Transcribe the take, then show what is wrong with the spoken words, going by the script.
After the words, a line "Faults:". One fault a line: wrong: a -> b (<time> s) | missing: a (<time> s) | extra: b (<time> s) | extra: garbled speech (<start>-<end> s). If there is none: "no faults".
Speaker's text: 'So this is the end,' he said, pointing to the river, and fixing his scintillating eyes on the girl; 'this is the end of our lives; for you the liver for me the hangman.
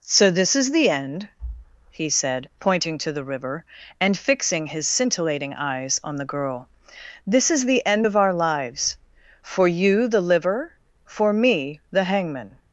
'So this is the end,' he said, pointing to the river, and fixing his scintillating eyes on the girl; 'this is the end of our lives; for you the liver for me the hangman.
Faults:
no faults